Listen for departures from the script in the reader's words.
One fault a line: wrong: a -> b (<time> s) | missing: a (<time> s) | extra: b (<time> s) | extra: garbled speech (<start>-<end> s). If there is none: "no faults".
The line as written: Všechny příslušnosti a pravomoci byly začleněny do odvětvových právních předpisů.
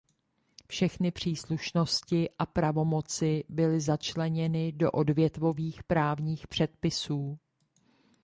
no faults